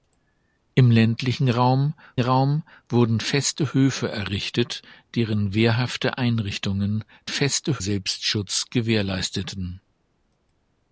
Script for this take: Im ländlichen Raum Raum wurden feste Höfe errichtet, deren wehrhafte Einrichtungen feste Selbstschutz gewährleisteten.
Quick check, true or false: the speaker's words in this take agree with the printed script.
true